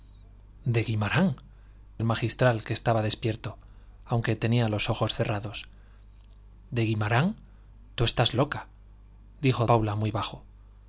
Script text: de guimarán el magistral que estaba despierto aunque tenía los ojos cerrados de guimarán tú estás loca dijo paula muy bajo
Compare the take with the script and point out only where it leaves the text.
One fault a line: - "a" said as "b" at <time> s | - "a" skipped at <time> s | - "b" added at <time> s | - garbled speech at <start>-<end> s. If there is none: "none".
none